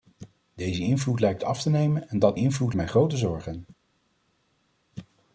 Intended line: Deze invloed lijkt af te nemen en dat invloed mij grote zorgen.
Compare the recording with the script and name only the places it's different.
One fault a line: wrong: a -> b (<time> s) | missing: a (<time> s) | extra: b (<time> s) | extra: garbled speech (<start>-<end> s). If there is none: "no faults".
no faults